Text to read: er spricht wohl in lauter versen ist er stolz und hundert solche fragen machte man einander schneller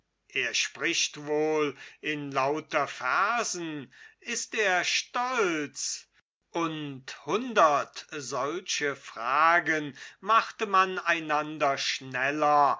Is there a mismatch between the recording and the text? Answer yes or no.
no